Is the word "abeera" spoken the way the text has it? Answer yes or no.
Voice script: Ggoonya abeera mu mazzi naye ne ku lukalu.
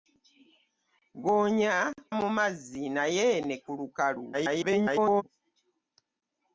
no